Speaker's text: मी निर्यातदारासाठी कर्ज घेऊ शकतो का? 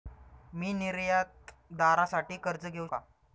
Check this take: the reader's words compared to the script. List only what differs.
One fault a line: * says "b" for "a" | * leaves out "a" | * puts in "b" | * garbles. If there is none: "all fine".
* leaves out "शकतो"